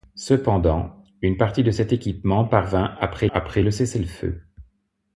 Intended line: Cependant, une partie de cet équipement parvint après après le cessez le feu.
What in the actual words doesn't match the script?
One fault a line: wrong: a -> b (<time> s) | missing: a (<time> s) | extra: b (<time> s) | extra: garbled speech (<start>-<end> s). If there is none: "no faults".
no faults